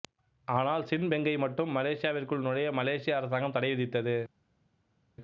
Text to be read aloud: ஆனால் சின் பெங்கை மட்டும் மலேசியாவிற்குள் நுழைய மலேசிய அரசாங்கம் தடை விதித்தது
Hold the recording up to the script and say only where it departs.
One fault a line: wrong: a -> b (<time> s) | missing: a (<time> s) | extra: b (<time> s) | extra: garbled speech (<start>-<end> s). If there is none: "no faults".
no faults